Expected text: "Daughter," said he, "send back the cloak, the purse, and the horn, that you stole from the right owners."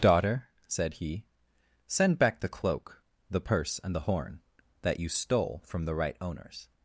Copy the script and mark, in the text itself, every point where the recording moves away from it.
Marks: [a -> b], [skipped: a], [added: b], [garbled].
"Daughter," said he, "send back the cloak, the purse, and the horn, that you stole from the right owners."